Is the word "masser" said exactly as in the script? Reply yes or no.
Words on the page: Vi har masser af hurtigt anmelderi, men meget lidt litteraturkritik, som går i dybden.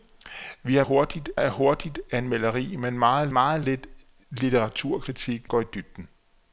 no